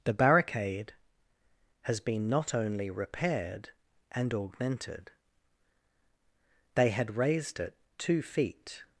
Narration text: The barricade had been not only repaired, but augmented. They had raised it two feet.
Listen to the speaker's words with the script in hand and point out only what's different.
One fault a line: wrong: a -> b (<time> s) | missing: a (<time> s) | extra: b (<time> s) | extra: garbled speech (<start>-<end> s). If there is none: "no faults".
wrong: had -> has (1.8 s)
wrong: but -> and (4.1 s)